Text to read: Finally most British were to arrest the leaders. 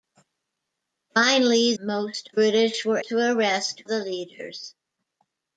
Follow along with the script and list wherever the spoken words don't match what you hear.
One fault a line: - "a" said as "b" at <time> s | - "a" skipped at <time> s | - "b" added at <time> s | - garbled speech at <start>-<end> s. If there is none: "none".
none